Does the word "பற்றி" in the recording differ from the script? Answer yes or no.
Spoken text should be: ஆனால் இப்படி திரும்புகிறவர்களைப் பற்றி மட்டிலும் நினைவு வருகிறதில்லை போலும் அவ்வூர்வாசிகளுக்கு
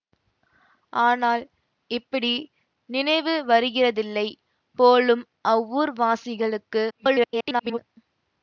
yes